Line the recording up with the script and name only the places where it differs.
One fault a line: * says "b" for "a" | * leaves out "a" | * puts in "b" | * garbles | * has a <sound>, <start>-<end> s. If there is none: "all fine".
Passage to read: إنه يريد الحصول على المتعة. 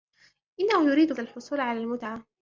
all fine